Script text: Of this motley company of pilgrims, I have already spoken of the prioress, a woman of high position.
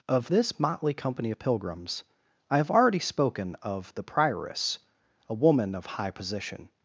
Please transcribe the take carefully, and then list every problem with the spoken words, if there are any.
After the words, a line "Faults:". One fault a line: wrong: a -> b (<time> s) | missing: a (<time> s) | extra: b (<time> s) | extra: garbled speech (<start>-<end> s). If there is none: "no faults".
Of this motley company of pilgrims, I have already spoken of the prioress, a woman of high position.
Faults:
no faults